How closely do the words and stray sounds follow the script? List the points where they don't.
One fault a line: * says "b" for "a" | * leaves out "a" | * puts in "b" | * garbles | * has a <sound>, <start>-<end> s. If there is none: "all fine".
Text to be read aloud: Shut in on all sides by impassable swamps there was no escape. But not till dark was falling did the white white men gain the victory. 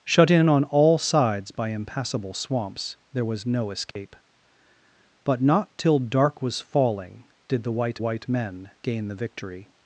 * has a dropout, 3.9-4.0 s